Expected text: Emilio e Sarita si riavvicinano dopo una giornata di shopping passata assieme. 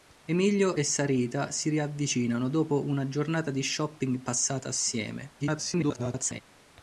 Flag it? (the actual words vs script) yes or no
yes